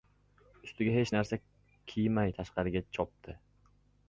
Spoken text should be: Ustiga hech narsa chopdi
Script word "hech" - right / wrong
right